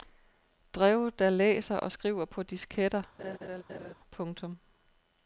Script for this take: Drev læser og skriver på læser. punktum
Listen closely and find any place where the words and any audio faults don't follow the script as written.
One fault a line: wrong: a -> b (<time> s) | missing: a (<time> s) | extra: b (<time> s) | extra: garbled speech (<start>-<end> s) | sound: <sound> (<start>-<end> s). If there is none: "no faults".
extra: der (1.2 s)
wrong: læser -> disketter (2.4 s)
sound: laugh (3.2-3.9 s)